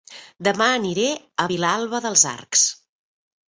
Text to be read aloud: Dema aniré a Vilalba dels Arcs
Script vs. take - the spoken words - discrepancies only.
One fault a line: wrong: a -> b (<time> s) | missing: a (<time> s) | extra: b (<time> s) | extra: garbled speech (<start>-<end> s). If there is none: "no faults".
no faults